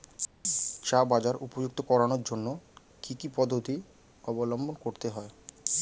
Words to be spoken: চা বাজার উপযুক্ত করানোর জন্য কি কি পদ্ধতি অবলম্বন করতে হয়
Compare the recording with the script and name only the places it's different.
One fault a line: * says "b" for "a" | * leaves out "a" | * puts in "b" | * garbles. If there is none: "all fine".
all fine